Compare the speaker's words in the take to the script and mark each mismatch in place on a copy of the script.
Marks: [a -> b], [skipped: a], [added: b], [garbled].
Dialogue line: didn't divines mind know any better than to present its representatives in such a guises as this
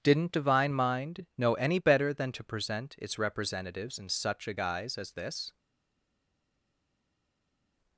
didn't [divines -> divine] mind know any better than to present its representatives in such a [guises -> guise] as this